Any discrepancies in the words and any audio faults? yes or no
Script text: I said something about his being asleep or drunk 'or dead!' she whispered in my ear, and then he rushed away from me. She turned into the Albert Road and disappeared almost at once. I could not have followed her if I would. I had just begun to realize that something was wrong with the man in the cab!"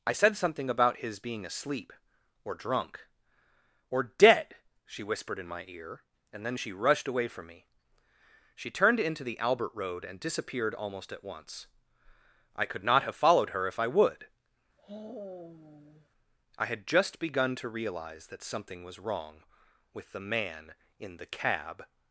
yes